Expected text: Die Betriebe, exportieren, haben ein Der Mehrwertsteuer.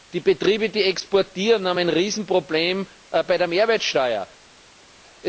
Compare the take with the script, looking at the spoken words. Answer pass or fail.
fail